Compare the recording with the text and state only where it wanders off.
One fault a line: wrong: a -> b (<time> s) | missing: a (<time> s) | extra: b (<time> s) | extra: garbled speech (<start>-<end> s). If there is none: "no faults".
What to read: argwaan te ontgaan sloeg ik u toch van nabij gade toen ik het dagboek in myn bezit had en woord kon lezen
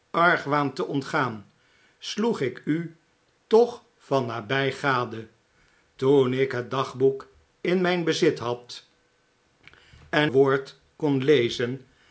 no faults